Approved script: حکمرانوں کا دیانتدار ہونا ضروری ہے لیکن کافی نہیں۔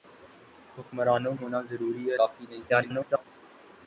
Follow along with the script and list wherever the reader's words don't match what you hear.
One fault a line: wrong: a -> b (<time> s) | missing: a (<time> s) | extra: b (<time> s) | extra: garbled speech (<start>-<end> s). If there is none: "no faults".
missing: کا دیانتدار (1.4 s)
missing: لیکن (2.2 s)
extra: garbled speech (2.7-3.3 s)